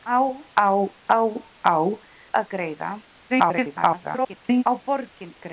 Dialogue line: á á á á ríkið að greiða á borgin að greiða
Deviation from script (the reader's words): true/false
true